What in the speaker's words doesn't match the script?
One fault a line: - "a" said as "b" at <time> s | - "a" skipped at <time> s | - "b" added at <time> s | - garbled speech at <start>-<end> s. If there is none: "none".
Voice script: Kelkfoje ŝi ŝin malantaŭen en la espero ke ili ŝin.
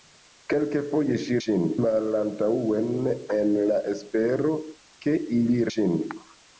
none